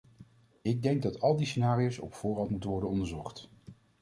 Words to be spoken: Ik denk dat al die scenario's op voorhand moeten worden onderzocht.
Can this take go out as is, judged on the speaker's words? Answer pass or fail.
pass